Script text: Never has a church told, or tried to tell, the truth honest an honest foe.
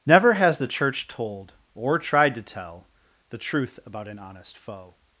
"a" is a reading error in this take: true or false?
true